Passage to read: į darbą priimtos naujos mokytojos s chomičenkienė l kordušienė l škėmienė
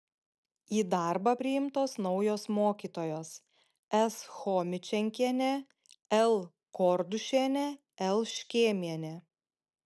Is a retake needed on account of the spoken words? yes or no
no